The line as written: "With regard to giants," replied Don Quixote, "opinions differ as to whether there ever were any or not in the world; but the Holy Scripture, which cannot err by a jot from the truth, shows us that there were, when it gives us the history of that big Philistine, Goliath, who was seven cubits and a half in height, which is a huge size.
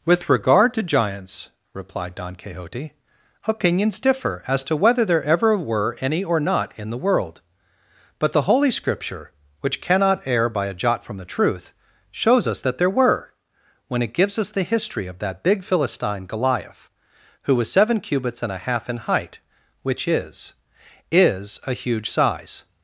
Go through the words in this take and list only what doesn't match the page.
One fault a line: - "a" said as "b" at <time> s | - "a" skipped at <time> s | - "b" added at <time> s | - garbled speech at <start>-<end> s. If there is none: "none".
- "is" added at 21.1 s